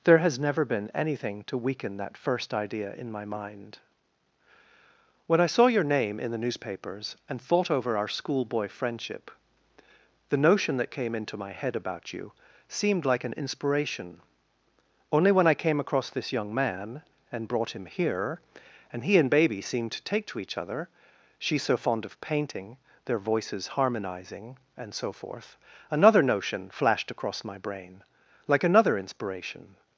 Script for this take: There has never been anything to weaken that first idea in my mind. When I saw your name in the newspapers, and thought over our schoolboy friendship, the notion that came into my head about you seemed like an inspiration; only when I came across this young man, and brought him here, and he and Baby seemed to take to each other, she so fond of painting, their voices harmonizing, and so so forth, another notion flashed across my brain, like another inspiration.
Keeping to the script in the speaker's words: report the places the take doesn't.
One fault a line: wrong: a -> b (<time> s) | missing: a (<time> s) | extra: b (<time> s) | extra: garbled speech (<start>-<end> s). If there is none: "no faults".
missing: so (25.1 s)